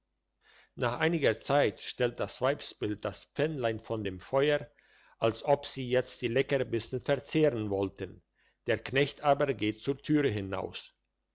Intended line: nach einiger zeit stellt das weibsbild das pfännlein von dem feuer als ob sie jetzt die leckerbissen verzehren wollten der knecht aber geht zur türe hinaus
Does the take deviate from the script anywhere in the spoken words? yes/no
no